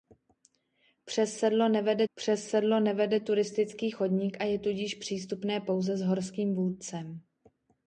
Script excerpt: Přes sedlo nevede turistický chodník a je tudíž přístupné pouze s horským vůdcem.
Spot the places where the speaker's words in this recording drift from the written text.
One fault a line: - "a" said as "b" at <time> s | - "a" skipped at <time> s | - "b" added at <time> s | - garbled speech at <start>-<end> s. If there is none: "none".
- "přes sedlo nevede" added at 2.1 s